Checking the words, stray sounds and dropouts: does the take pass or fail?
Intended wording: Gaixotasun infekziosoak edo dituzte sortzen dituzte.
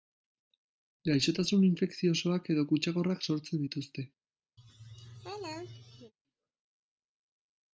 fail